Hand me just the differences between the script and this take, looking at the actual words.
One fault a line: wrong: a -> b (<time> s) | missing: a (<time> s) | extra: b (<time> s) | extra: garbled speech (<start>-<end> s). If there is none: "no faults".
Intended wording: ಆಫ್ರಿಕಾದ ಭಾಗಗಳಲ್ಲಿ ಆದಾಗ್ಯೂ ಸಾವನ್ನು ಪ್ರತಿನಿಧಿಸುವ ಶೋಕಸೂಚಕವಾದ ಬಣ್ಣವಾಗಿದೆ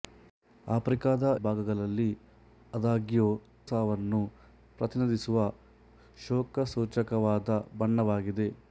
no faults